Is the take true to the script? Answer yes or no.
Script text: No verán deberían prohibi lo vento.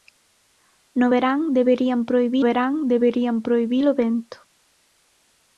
no